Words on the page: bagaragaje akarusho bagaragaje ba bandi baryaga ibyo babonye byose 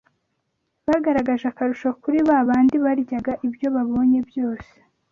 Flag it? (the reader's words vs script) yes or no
yes